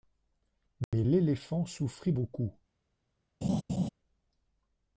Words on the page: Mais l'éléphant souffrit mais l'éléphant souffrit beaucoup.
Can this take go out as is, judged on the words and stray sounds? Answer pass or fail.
fail